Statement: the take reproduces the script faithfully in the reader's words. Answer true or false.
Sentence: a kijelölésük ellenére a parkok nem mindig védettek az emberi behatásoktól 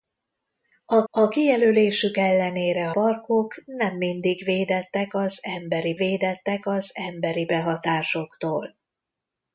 false